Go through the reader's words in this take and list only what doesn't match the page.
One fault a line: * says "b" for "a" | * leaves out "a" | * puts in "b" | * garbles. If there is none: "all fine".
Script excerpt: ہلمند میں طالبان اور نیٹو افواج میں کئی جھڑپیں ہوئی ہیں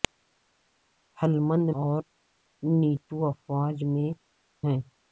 * leaves out "میں طالبان"
* leaves out "کئی جھڑپیں ہوئی"